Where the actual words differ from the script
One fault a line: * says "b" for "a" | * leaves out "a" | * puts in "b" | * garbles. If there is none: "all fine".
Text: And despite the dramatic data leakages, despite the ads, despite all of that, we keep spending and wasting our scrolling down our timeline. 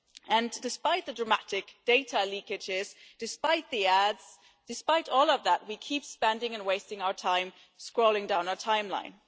* puts in "time"